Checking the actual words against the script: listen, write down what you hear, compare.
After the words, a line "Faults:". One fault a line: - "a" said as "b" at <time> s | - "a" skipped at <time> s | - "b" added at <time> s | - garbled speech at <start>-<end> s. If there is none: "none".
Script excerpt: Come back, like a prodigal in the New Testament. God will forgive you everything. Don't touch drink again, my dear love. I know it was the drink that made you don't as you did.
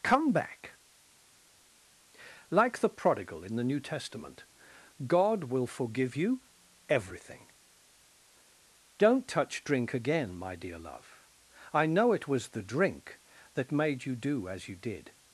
Come back, like the prodigal in the New Testament. God will forgive you everything. Don't touch drink again, my dear love. I know it was the drink that made you do as you did.
Faults:
- "a" said as "the" at 2.8 s
- "don't" said as "do" at 14.1 s